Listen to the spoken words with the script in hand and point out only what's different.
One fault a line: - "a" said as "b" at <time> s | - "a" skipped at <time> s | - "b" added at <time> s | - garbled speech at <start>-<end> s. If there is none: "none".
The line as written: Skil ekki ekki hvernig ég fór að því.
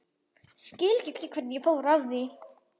none